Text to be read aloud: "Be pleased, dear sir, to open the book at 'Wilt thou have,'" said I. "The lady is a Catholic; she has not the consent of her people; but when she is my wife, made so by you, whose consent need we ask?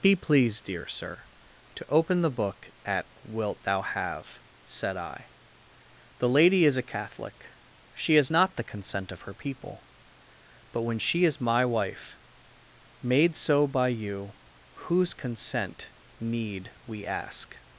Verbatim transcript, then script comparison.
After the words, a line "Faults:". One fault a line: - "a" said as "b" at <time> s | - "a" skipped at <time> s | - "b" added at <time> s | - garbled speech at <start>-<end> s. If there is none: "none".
"Be pleased, dear sir, to open the book at 'Wilt thou have,'" said I. "The lady is a Catholic; she has not the consent of her people; but when she is my wife, made so by you, whose consent need we ask?
Faults:
none